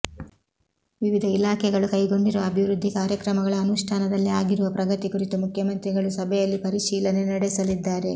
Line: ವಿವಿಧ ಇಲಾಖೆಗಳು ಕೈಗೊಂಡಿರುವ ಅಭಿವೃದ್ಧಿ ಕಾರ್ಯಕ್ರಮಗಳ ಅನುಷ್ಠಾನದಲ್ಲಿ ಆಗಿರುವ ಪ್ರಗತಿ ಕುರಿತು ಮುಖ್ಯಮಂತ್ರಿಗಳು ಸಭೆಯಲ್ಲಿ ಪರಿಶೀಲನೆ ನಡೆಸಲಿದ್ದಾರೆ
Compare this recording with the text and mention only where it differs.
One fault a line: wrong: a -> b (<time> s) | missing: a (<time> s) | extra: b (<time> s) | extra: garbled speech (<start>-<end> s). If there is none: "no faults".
no faults